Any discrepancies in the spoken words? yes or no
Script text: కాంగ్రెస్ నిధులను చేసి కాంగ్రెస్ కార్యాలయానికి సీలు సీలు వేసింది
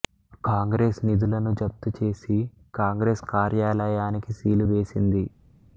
yes